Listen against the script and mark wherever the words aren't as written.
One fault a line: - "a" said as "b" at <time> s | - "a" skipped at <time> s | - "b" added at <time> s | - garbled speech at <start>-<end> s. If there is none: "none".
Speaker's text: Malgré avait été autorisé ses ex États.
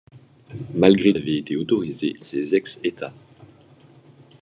none